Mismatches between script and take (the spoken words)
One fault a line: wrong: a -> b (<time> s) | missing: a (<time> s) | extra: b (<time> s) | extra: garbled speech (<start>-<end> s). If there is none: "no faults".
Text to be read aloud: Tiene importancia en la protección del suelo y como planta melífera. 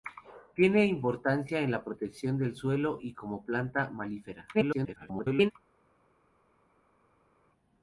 extra: garbled speech (4.5-5.5 s)